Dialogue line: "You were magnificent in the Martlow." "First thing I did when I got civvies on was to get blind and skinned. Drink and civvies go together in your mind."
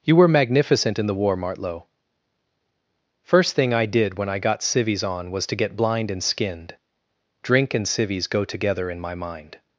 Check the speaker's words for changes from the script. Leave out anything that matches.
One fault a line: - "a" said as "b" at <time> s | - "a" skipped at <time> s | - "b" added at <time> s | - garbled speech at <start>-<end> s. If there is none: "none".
- "war" added at 1.1 s
- "your" said as "my" at 9.0 s